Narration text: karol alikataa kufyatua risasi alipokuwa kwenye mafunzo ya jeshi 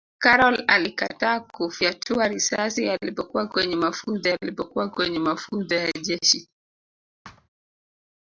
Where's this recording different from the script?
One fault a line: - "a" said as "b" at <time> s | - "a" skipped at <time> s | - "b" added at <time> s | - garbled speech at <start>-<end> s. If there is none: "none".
- "alipokuwa kwenye mafunzo" added at 4.3 s